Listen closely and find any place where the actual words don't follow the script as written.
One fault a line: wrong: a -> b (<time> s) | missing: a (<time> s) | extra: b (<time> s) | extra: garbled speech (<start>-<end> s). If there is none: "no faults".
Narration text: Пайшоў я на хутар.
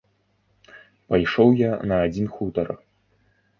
extra: адзін (2.1 s)